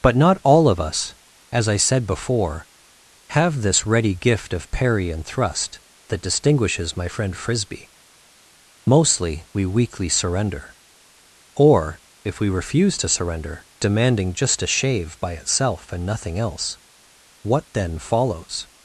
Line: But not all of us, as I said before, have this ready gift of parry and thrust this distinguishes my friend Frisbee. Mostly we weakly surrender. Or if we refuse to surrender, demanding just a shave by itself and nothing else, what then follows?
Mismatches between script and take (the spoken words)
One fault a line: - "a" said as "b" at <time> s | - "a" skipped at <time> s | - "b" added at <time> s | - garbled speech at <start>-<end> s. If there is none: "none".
- "this" said as "that" at 6.1 s